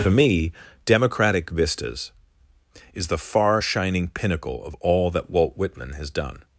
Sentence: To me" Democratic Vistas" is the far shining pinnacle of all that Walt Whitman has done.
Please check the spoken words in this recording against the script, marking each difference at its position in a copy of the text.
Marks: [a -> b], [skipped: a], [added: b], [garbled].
[To -> For] me" Democratic Vistas" is the far shining pinnacle of all that Walt Whitman has done.